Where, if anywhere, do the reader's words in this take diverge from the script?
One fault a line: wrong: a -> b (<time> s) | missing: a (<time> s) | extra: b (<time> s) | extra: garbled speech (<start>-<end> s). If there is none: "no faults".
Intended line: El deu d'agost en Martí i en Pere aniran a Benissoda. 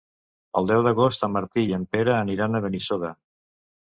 no faults